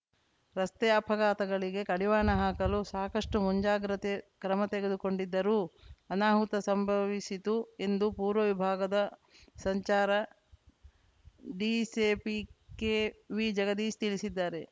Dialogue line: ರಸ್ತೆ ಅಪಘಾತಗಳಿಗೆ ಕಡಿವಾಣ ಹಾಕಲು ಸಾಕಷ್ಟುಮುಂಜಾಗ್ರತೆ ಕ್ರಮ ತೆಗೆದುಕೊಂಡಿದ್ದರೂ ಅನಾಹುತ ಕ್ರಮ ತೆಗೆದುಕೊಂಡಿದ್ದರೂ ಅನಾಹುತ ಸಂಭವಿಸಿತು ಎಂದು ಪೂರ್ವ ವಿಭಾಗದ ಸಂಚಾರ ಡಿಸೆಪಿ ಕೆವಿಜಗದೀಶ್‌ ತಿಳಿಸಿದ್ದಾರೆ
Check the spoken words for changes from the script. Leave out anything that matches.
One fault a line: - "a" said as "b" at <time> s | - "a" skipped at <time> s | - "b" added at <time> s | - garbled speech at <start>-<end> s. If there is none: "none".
- "ಕ್ರಮ ತೆಗೆದುಕೊಂಡಿದ್ದರೂ ಅನಾಹುತ" skipped at 6.5 s